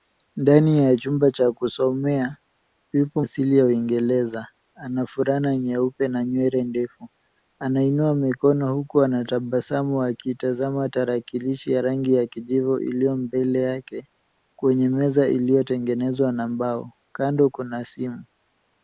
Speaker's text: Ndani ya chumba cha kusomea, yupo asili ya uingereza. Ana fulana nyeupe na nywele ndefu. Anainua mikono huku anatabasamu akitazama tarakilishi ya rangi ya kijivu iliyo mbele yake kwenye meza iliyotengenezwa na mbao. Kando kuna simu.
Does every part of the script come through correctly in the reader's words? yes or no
yes